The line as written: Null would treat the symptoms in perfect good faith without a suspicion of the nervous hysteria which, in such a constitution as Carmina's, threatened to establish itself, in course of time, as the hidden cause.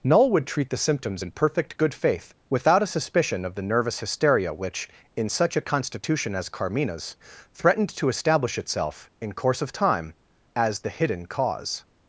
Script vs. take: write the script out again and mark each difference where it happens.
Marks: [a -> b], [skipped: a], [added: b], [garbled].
Null would treat the symptoms in perfect good faith without a suspicion of the nervous hysteria which, in such a constitution as Carmina's, threatened to establish itself, in course of time, as the hidden cause.